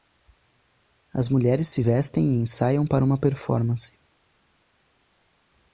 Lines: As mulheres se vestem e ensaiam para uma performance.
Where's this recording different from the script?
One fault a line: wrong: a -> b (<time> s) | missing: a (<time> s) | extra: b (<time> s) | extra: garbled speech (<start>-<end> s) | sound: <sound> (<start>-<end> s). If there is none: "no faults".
no faults